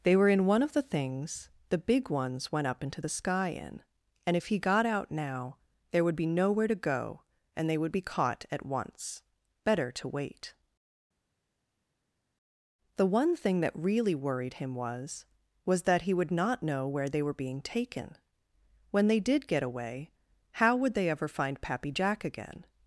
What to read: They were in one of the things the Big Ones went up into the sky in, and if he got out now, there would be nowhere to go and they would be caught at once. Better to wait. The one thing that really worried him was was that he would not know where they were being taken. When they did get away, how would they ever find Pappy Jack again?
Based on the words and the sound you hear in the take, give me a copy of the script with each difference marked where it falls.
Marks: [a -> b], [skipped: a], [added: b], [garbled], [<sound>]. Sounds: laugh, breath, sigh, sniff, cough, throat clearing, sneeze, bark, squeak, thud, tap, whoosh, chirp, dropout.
They were in one of the things the Big Ones went up into the sky in, and if he got out now, there would be nowhere to go and they would be caught at once. Better to wait. The one thing that really worried him was was that he would not know where they were being taken. When they did get away, how would they ever find Pappy Jack again?